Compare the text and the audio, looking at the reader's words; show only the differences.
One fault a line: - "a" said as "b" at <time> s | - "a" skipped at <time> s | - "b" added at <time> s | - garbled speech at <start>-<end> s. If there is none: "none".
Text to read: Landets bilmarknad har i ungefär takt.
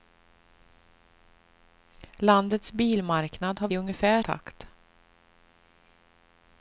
none